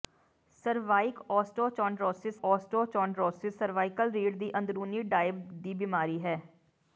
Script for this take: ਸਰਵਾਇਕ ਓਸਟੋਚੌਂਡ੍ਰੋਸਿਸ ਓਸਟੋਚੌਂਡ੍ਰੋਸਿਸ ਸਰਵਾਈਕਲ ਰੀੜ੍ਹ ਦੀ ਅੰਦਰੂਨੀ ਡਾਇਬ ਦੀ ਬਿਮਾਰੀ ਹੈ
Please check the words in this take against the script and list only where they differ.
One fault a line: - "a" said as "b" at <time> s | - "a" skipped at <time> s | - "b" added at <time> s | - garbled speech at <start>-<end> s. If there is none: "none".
none